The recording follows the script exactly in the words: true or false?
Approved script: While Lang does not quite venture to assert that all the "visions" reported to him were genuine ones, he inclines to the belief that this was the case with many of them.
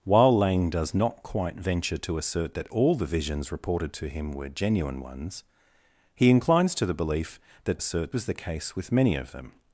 false